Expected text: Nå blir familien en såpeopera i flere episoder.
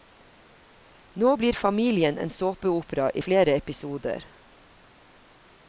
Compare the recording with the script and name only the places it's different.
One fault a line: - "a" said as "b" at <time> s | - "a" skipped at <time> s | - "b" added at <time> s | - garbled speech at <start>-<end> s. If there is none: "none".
none